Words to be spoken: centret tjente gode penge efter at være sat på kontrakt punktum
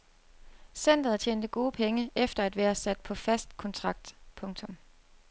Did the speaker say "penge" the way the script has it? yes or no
yes